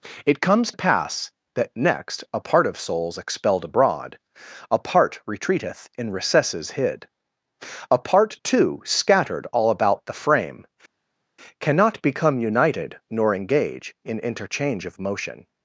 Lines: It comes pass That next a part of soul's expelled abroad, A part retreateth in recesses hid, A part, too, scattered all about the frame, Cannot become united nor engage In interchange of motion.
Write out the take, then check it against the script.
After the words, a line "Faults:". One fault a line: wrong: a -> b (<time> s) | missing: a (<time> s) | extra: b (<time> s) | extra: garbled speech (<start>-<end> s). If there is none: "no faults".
It comes pass That next a part of soul's expelled abroad, A part retreateth in recesses hid, A part, too, scattered all about the frame, Cannot become united nor engage In interchange of motion.
Faults:
no faults